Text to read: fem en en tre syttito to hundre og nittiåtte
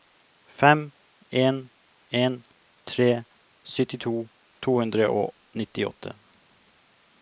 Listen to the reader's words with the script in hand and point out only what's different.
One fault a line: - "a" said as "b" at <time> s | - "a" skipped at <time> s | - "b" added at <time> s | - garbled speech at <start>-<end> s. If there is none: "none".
none